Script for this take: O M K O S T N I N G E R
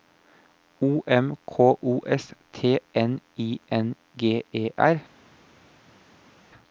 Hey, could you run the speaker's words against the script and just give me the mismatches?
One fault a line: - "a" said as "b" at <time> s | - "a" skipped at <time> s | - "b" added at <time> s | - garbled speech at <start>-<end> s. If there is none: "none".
none